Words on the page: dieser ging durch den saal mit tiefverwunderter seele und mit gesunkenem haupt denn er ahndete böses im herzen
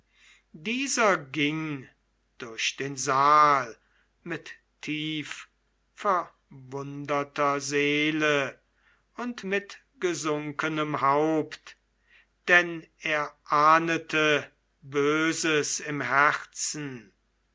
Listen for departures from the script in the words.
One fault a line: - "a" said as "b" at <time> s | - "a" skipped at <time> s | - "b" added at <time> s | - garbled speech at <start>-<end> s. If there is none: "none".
none